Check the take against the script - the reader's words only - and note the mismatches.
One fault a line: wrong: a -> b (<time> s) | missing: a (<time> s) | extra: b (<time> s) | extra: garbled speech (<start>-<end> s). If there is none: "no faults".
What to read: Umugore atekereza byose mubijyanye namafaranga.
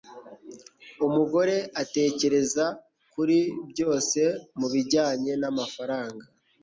extra: kuri (3.1 s)